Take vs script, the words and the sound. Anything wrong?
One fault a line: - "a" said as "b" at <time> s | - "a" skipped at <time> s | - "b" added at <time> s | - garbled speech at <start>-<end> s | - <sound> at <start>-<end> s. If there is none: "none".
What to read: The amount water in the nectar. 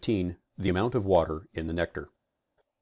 - "of" added at 0.9 s